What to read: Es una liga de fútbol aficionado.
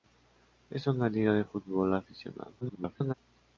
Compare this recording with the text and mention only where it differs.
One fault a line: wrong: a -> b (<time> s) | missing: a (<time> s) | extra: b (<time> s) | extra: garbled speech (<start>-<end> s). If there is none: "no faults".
extra: garbled speech (2.6-3.1 s)